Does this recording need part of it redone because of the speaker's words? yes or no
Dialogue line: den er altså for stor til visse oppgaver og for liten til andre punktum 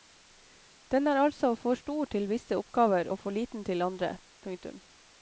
no